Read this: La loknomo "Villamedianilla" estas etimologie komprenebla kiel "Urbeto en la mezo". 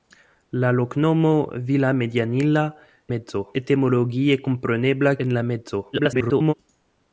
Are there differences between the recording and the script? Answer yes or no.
yes